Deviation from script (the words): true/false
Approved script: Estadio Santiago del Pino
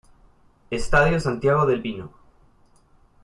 false